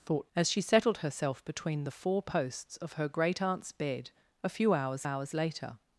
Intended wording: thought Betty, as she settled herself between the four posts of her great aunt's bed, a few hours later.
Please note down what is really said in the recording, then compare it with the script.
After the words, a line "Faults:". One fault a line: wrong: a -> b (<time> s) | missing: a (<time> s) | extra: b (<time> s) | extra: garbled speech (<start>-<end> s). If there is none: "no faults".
thought As she settled herself between the four posts of her great aunt's bed, a few hours hours later.
Faults:
missing: Betty (0.3 s)
extra: hours (5.0 s)